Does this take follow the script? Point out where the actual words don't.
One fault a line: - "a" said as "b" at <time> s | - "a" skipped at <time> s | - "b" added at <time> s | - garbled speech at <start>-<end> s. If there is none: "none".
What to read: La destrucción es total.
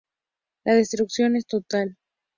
none